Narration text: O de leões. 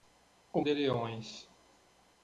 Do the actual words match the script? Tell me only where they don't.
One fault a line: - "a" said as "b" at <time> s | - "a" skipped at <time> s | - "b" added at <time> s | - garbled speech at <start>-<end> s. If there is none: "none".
none